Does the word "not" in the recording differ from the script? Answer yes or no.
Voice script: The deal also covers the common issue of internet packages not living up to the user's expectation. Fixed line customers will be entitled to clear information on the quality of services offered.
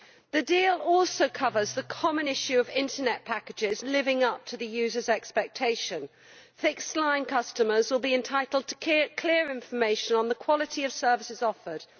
yes